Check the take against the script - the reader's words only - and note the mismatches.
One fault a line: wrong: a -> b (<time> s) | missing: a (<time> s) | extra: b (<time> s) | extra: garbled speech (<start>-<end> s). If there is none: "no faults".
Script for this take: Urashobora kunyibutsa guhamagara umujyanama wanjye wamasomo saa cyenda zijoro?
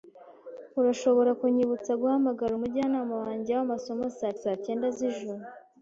extra: saa (4.4 s)